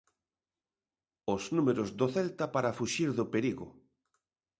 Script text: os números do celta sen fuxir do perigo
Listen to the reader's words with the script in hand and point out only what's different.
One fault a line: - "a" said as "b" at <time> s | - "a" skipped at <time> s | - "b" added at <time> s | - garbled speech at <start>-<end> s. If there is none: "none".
- "sen" said as "para" at 2.5 s